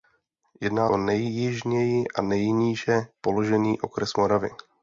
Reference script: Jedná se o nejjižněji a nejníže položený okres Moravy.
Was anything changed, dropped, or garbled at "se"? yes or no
yes